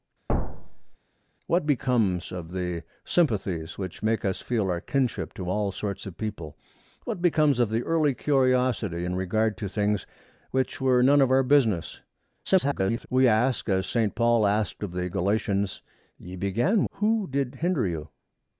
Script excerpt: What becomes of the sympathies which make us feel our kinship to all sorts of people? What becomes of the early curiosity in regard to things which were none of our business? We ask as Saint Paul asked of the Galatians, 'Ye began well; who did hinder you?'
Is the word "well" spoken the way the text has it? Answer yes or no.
no